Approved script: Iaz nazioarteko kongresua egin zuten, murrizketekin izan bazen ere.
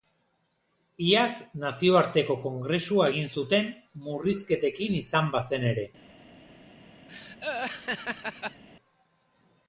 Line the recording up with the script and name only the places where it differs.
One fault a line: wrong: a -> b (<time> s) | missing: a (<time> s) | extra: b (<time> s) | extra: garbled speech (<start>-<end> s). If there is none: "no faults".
no faults